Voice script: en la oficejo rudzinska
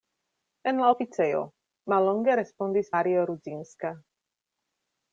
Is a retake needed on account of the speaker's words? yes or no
yes